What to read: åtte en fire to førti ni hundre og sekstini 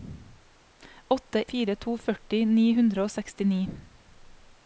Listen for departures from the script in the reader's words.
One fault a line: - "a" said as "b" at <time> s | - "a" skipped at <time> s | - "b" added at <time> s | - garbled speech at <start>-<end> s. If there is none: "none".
- "en" skipped at 1.5 s